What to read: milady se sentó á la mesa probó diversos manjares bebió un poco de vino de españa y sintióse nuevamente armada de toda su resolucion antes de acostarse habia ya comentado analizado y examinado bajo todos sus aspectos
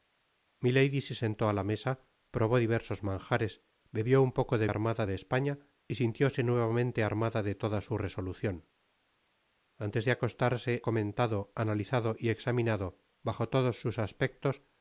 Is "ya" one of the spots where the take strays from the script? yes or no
yes